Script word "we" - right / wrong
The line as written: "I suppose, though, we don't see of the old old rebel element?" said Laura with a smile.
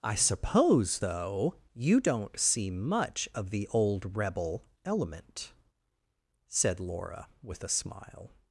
wrong